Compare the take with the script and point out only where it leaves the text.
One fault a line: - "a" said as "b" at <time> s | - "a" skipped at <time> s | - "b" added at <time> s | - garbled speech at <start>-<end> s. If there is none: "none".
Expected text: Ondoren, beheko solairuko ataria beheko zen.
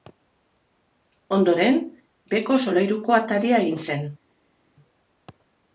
- "beheko" said as "egin" at 3.7 s